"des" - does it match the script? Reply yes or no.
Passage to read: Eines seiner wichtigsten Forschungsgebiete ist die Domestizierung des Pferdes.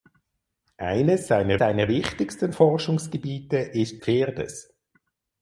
no